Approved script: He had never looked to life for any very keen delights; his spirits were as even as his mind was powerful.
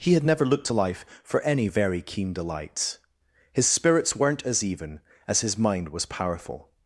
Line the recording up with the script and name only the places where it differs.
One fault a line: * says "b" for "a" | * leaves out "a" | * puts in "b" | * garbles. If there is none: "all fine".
* says "weren't" for "were"